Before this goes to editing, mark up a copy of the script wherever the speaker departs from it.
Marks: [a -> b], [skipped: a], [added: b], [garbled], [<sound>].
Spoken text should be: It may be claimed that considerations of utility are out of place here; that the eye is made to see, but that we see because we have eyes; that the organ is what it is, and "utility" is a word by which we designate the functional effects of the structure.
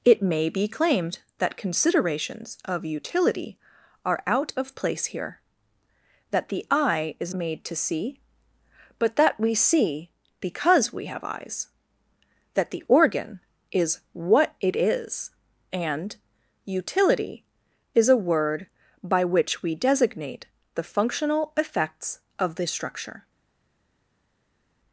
It may be claimed that considerations of utility are out of place here; that the eye is made to see, but that we see because we have eyes; that the organ is what it is, and "utility" is a word by which we designate the functional effects of the structure.